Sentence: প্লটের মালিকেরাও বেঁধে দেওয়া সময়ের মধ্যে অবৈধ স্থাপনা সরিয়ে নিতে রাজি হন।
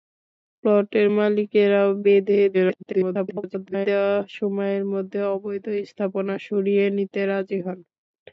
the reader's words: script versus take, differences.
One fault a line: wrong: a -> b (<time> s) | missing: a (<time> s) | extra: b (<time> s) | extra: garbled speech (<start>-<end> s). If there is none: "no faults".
extra: garbled speech (2.5-3.9 s)